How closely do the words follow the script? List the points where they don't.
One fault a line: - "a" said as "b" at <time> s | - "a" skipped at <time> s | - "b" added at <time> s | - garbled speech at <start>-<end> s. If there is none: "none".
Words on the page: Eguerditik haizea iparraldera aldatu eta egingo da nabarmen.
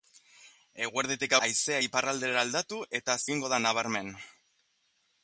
none